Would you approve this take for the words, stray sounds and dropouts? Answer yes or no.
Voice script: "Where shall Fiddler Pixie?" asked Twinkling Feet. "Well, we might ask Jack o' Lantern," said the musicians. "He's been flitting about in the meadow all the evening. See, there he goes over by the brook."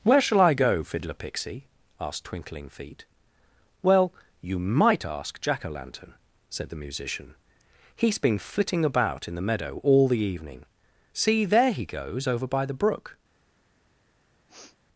no